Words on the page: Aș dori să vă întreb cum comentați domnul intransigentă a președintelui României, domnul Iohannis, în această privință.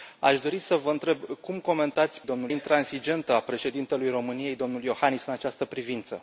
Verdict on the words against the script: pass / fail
pass